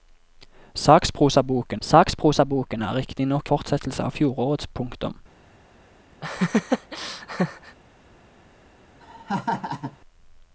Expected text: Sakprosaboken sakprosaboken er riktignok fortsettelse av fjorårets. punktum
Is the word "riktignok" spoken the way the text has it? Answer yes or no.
yes